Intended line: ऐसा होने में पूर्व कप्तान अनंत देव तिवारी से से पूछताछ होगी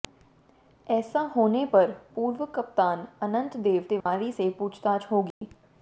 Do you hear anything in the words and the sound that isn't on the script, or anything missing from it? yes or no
yes